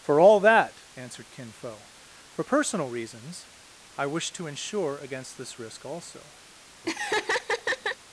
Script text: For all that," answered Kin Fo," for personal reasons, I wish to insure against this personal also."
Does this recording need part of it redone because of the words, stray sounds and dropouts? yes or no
yes